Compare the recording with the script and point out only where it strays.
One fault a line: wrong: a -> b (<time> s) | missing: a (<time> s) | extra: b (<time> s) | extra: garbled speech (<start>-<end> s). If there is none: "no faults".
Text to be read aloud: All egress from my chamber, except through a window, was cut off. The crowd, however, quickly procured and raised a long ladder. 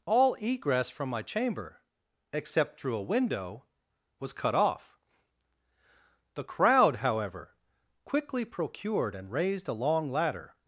no faults